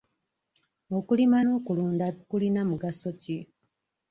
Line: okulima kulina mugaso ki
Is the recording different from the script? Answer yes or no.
yes